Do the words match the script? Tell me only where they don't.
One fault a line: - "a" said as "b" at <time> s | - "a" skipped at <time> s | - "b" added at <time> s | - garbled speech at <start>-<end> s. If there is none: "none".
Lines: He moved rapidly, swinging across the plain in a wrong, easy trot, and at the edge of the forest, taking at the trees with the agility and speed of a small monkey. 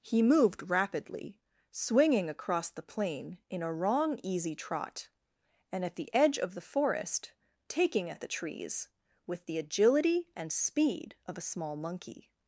none